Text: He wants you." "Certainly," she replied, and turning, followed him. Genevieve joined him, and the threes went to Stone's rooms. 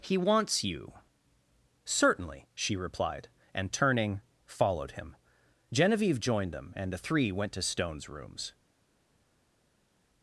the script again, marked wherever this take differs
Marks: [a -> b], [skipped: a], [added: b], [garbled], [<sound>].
He wants you." "Certainly," she replied, and turning, followed him. Genevieve joined [him, -> them] and the [threes -> three] went to Stone's rooms.